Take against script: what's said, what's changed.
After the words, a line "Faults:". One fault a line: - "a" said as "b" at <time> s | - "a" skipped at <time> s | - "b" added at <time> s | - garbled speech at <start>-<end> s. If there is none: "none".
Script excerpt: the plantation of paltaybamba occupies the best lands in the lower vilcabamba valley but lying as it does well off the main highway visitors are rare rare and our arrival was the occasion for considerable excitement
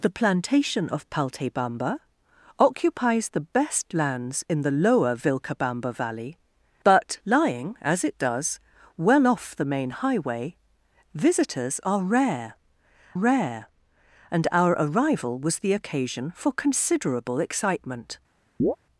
the plantation of paltaybamba occupies the best lands in the lower vilcabamba valley but lying as it does well off the main highway visitors are rare rare and our arrival was the occasion for considerable excitement
Faults:
none